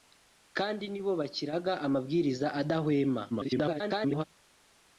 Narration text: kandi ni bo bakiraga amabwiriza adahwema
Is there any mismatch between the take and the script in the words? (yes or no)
yes